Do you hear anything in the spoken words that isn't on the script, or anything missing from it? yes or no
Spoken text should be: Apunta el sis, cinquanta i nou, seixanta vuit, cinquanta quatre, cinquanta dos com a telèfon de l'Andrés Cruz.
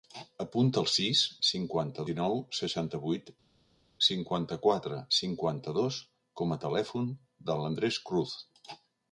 no